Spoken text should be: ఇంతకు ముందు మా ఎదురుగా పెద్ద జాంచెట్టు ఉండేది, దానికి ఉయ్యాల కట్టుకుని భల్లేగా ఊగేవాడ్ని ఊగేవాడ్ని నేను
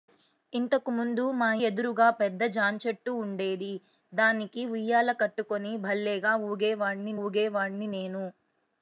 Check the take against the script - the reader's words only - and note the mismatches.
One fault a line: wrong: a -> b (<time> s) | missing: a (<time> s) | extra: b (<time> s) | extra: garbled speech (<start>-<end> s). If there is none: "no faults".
no faults